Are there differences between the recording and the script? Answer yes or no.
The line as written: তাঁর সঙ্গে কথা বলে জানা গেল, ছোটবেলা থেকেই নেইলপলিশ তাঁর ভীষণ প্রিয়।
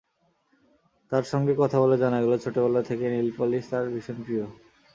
no